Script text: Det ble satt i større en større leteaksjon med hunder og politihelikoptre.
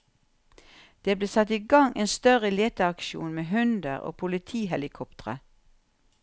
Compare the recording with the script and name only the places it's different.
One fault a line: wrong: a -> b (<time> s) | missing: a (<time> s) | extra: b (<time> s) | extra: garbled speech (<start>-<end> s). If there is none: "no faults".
wrong: større -> gang (1.7 s)